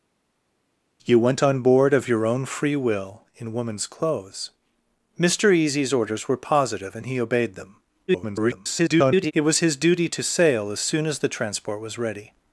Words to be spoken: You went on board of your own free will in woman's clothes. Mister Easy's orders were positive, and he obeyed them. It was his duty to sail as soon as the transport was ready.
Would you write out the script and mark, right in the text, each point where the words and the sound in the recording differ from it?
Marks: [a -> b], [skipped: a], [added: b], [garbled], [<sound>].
You went on board of your own free will in woman's clothes. Mister Easy's orders were positive, and he obeyed them. [garbled] It was his duty to sail as soon as the transport was ready.